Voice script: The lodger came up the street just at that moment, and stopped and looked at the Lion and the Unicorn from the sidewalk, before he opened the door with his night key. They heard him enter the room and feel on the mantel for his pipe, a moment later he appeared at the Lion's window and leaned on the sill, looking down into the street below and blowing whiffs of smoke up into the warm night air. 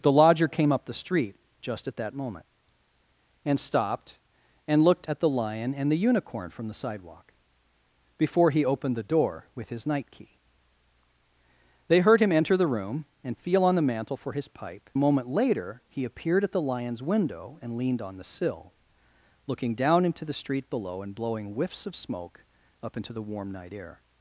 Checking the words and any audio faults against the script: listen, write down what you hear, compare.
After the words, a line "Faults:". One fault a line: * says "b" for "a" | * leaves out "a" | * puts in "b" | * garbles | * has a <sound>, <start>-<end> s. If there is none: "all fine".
The lodger came up the street just at that moment, and stopped and looked at the Lion and the Unicorn from the sidewalk, before he opened the door with his night key. They heard him enter the room and feel on the mantel for his pipe, a moment later he appeared at the Lion's window and leaned on the sill, looking down into the street below and blowing whiffs of smoke up into the warm night air.
Faults:
all fine